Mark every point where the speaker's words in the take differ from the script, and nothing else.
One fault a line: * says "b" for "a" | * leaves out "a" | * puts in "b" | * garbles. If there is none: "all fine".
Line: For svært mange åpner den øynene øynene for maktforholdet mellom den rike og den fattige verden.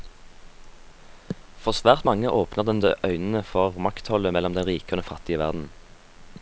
* leaves out "øynene"